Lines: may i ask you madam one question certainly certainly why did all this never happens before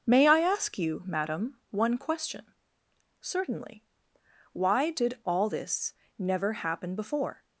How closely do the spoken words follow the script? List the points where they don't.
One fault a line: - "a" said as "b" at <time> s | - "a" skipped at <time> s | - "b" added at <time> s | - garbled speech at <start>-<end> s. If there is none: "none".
- "certainly" skipped at 3.8 s
- "happens" said as "happen" at 6.5 s